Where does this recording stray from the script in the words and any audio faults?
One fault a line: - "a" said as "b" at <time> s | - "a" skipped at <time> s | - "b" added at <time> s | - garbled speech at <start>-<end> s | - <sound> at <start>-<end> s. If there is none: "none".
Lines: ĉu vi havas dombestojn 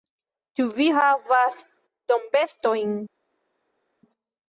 none